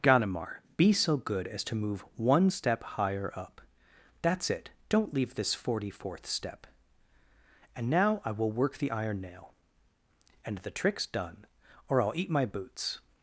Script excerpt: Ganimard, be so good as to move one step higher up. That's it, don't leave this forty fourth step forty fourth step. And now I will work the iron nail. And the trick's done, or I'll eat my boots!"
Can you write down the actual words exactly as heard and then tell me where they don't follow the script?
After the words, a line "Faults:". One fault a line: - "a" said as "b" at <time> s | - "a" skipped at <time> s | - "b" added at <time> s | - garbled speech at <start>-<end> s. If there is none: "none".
Ganimard, be so good as to move one step higher up. That's it, don't leave this forty fourth step. And now I will work the iron nail. And the trick's done, or I'll eat my boots!"
Faults:
- "forty fourth step" skipped at 6.7 s